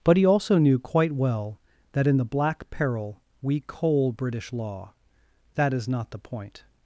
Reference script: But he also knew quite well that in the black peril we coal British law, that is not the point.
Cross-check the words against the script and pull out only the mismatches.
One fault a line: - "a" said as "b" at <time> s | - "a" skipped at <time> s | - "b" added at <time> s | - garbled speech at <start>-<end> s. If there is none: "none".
none